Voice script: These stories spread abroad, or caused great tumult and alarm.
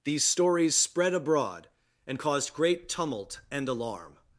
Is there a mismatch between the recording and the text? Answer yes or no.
yes